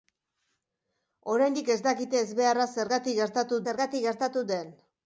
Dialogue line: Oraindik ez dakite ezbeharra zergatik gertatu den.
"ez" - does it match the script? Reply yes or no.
yes